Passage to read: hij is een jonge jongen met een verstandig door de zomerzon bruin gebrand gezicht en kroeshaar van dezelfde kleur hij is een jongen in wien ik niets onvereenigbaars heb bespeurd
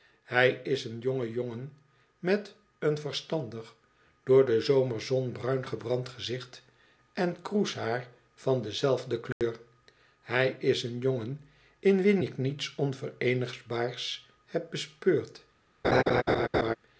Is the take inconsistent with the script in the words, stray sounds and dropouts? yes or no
yes